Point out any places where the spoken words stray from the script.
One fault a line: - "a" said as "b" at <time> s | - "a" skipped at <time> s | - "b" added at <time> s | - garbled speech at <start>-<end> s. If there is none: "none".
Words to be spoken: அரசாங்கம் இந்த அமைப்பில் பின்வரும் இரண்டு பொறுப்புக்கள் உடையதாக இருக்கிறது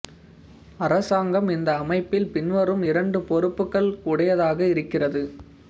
none